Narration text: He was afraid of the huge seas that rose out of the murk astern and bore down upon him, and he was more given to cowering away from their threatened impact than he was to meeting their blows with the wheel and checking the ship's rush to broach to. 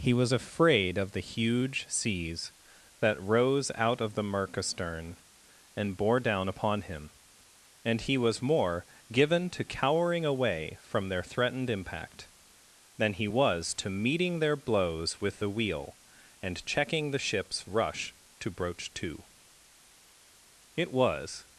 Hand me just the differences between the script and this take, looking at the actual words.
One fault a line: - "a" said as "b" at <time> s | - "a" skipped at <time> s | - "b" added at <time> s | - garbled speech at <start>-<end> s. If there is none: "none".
- "It was" added at 20.7 s